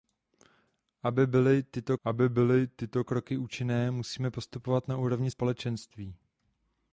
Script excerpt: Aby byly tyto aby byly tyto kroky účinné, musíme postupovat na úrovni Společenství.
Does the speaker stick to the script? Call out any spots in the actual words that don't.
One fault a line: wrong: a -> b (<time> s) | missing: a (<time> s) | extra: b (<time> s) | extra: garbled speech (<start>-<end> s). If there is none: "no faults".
no faults